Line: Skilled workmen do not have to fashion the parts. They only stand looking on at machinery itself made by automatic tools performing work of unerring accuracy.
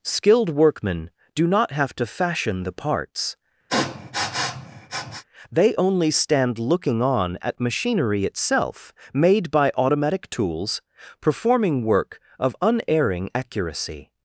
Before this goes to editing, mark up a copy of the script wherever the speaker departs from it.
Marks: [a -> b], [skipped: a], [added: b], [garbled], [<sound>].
Skilled workmen do not have to fashion the parts. [sniff] They only stand looking on at machinery itself made by automatic tools performing work of unerring accuracy.